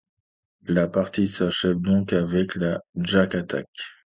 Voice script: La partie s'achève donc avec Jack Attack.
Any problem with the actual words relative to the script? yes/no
yes